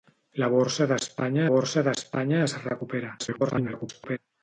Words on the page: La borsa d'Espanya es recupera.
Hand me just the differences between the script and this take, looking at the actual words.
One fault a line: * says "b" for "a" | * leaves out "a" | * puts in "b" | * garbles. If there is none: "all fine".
* puts in "borsa d'Espanya"
* garbles